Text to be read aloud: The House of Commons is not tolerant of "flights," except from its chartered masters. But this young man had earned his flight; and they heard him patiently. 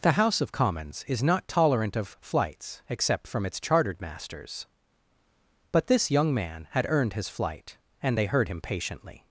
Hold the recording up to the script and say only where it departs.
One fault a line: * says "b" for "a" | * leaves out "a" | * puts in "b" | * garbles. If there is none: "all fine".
all fine